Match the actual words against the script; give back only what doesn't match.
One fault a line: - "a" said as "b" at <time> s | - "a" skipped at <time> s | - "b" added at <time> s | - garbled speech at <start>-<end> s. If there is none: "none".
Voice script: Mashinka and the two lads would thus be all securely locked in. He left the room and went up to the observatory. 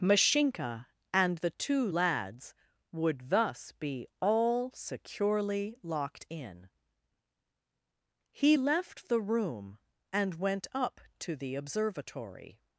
none